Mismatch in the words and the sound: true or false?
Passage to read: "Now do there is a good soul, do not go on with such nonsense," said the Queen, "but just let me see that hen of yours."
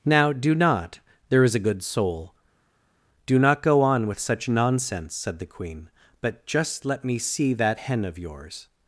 true